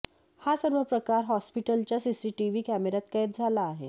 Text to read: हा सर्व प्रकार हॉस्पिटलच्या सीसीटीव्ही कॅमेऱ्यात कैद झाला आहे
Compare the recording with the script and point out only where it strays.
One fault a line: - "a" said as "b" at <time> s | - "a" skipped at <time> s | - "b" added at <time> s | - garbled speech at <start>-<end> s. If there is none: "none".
none